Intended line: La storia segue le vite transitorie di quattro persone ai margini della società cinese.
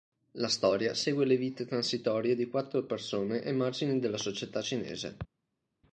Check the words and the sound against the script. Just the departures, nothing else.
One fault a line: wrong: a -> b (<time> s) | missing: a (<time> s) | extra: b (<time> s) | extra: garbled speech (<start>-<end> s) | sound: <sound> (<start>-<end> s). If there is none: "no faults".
no faults